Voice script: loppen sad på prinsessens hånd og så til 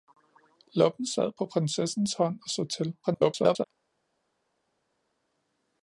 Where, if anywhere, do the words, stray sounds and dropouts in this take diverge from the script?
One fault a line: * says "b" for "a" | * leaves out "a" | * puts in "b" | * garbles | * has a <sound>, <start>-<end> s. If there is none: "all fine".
* garbles